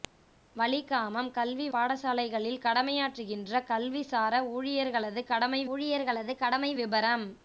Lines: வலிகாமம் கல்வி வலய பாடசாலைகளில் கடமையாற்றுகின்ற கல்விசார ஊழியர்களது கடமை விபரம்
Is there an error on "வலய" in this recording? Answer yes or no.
yes